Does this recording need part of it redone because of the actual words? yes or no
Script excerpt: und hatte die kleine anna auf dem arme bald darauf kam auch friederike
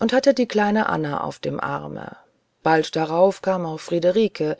no